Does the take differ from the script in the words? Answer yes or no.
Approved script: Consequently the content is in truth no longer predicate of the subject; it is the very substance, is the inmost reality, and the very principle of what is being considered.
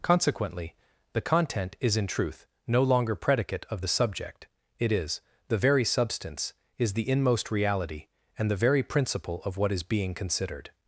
no